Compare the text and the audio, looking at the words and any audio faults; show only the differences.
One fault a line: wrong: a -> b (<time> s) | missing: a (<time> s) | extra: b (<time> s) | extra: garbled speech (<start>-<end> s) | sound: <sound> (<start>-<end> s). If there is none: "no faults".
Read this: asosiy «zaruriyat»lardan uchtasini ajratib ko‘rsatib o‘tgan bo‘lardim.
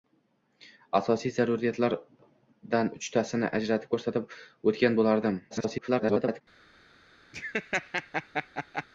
extra: garbled speech (5.5-6.4 s)
sound: laugh (7.3-8.9 s)